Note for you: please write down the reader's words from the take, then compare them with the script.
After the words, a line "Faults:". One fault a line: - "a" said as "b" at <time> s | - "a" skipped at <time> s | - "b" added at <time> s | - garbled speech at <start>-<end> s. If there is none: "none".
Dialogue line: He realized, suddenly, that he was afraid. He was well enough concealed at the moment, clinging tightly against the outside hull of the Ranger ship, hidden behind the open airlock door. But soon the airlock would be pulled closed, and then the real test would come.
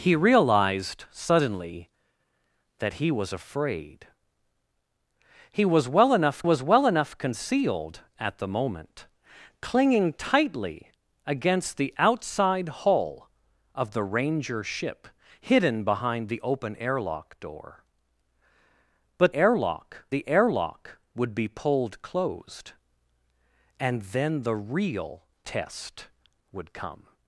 He realized, suddenly, that he was afraid. He was well enough was well enough concealed at the moment, clinging tightly against the outside hull of the Ranger ship, hidden behind the open airlock door. But airlock the airlock would be pulled closed, and then the real test would come.
Faults:
- "was well enough" added at 6.4 s
- "soon" said as "airlock" at 19.3 s